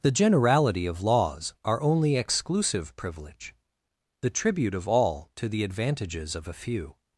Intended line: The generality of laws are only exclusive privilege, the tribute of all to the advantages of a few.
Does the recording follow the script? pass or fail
pass